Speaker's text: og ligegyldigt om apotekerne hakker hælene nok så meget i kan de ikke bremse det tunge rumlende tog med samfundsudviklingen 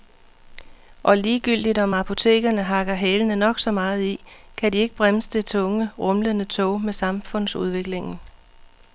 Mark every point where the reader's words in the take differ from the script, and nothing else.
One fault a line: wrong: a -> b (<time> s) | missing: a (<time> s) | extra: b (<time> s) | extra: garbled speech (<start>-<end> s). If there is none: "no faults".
no faults